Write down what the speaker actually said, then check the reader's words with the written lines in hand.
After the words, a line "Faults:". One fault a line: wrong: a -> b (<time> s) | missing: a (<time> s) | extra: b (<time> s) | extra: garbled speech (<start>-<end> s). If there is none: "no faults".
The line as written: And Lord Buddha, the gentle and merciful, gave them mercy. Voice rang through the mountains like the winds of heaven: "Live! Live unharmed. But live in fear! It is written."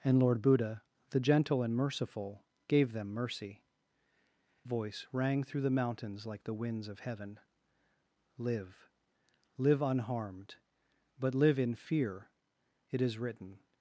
And Lord Buddha, the gentle and merciful, gave them mercy. Voice rang through the mountains like the winds of heaven: "Live! Live unharmed. But live in fear! It is written."
Faults:
no faults